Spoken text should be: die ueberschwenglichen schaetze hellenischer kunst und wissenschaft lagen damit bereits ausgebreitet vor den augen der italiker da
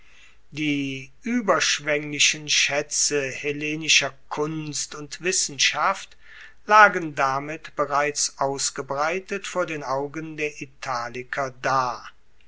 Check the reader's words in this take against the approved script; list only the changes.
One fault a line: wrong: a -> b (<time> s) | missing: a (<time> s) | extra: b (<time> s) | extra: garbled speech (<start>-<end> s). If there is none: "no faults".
no faults